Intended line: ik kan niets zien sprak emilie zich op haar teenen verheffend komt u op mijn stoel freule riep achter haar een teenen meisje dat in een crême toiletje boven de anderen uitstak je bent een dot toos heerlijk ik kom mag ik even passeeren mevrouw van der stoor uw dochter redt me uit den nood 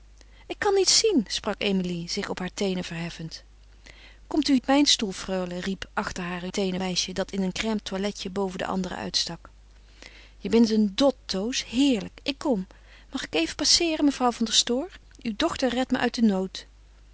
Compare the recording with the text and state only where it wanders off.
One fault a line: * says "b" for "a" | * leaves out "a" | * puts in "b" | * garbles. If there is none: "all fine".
all fine